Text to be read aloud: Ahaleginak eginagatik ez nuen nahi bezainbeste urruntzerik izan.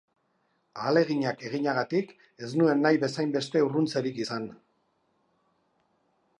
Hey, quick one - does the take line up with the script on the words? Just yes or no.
yes